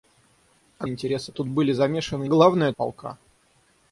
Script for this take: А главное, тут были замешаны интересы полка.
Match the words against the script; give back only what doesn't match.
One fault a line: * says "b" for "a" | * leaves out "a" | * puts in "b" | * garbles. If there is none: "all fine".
* says "интересы" for "главное"
* says "главное" for "интересы"